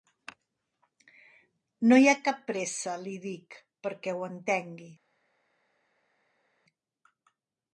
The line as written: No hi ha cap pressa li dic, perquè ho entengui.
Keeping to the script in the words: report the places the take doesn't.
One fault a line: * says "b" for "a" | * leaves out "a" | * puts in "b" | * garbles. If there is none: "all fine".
all fine